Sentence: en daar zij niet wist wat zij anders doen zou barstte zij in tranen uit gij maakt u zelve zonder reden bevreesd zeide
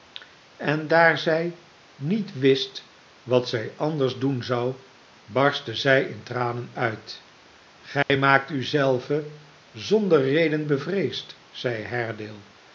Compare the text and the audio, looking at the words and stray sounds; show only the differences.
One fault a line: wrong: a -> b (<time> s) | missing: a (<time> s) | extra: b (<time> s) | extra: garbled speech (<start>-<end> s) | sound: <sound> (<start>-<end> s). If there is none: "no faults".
sound: dropout (8.0-8.1 s)